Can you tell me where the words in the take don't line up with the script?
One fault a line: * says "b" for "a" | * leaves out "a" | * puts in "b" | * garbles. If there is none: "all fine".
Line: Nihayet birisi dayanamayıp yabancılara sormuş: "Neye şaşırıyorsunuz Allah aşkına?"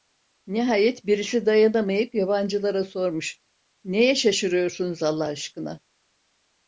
all fine